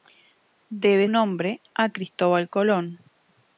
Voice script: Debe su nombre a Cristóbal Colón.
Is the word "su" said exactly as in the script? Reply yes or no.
no